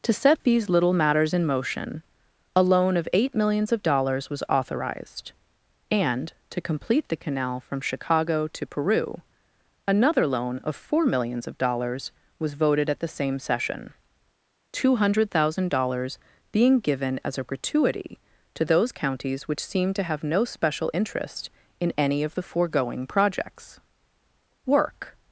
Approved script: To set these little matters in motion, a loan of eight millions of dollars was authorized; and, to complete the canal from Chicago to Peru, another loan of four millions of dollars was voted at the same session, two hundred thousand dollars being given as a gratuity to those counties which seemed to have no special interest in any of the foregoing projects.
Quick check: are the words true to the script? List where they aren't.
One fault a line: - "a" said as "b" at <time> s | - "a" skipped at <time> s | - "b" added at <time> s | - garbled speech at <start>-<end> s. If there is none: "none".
- "Work" added at 24.6 s